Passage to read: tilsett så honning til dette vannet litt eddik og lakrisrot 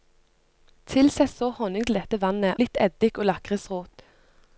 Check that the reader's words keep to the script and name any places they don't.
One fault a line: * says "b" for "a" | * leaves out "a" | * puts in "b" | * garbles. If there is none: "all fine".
all fine